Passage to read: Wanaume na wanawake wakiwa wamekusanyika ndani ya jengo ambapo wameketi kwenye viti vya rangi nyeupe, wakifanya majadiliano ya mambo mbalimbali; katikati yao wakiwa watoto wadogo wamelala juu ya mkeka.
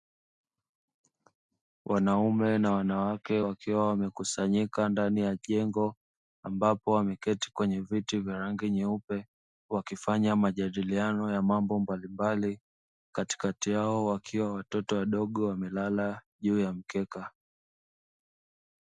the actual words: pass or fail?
pass